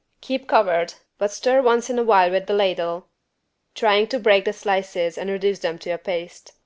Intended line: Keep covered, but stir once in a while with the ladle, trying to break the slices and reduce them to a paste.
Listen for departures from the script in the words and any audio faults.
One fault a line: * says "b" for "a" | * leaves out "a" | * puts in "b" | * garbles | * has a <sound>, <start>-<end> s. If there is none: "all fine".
all fine